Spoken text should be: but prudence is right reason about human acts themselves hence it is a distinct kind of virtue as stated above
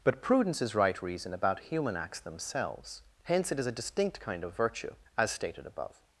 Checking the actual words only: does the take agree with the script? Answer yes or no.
yes